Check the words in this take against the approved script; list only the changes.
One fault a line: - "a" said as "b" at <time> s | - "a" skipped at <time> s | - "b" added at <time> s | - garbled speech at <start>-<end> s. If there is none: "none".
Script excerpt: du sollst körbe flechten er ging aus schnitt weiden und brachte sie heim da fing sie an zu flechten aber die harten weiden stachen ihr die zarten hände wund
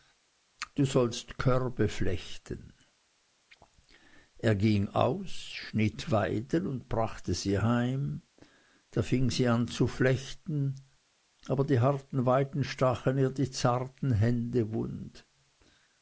none